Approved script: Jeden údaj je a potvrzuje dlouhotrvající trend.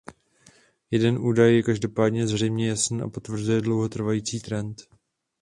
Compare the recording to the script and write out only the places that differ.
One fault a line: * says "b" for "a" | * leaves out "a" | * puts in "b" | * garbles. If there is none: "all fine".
* puts in "každopádně zřejmě jasný"